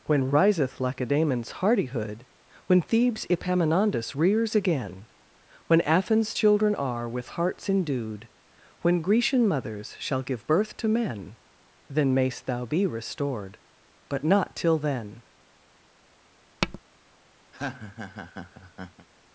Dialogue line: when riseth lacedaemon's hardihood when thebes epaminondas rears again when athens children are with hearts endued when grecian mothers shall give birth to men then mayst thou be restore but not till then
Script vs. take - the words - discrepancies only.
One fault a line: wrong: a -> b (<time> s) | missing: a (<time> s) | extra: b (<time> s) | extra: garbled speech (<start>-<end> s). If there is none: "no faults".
wrong: restore -> restored (12.9 s)